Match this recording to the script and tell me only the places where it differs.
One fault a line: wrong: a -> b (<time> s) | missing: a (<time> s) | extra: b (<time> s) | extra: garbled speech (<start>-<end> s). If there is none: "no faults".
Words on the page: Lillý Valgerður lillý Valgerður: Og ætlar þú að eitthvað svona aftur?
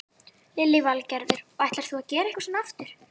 missing: lillý Valgerður (1.4 s)
extra: gera (2.1 s)